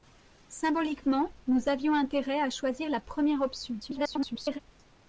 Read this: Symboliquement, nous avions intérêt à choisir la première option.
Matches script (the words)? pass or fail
fail